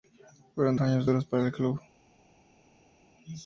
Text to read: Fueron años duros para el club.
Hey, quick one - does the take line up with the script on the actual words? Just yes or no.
yes